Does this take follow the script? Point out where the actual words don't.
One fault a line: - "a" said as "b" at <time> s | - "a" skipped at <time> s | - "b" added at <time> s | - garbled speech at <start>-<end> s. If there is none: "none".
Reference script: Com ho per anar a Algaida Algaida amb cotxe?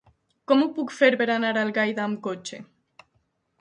- "puc fer" added at 0.8 s
- "Algaida" skipped at 2.1 s